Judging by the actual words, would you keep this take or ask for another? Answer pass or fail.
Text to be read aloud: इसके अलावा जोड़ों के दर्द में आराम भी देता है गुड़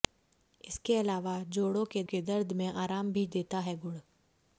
fail